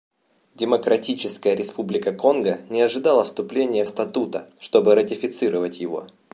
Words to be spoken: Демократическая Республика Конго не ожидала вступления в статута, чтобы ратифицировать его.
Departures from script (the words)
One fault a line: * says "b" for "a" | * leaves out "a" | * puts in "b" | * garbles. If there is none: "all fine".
all fine